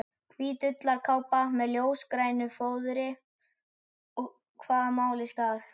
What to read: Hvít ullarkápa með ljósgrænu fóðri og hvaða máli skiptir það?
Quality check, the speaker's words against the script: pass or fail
fail